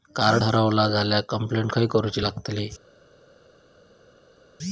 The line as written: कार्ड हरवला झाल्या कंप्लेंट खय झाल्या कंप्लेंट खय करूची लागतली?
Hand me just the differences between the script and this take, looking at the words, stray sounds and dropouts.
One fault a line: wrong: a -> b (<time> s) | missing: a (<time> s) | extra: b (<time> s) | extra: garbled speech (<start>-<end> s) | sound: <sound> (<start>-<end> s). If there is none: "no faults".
missing: झाल्या कंप्लेंट खय (1.9 s)